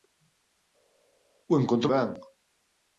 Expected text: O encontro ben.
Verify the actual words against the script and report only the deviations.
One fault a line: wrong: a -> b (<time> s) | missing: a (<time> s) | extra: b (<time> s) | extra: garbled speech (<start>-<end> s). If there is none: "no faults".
no faults